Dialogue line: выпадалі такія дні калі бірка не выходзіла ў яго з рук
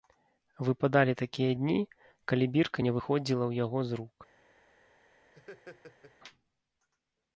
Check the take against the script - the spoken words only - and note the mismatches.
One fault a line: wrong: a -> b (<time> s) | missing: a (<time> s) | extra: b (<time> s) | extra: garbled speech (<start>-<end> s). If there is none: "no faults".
no faults